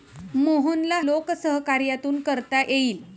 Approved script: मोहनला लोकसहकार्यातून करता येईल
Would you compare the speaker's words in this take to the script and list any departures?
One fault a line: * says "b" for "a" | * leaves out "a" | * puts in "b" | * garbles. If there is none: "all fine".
all fine